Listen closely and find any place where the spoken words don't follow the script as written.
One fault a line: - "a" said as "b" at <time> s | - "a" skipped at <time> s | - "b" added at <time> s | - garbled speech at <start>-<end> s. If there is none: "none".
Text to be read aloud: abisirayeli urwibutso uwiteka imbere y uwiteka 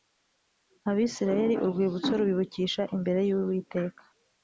- "uwiteka" said as "rubibukisha" at 2.2 s